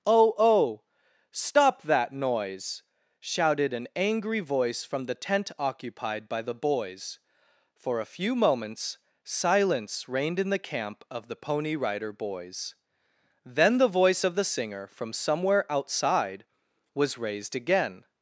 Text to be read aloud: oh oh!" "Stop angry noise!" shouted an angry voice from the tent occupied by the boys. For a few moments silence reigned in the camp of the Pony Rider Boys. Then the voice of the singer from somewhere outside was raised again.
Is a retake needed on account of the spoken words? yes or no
yes